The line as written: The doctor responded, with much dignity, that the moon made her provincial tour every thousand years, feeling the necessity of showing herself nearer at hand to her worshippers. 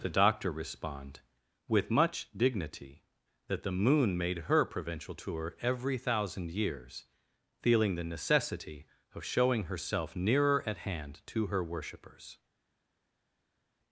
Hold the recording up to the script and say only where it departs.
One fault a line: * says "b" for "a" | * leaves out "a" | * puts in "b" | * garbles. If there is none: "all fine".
* says "respond" for "responded"